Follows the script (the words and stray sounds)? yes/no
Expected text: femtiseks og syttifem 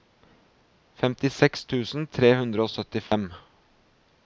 no